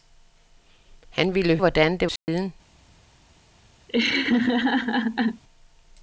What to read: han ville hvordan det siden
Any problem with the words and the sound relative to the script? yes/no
yes